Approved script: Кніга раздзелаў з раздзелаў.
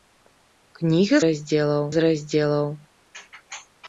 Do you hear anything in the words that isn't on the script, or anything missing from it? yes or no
no